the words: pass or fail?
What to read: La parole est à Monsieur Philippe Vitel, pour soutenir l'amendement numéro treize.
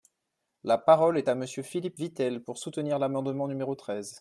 pass